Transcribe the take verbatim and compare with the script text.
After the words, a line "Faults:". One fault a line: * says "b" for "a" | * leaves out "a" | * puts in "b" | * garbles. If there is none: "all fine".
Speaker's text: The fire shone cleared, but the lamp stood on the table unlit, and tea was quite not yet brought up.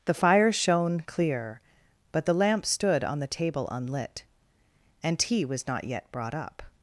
The fire shone clear, but the lamp stood on the table unlit, and tea was not yet brought up.
Faults:
* says "clear" for "cleared"
* leaves out "quite"